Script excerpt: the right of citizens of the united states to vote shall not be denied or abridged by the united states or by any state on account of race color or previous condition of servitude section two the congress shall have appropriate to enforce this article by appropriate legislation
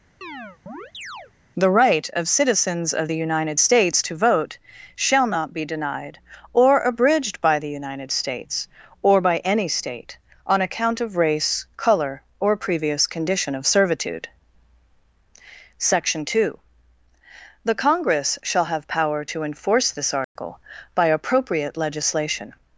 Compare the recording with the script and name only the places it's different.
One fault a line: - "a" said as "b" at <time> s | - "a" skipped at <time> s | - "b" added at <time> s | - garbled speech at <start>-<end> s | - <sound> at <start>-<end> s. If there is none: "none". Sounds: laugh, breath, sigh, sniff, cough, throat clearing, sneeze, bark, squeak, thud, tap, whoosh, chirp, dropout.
- chirp at 0.2-1.3 s
- "appropriate" said as "power" at 18.9 s
- dropout at 20.2-20.4 s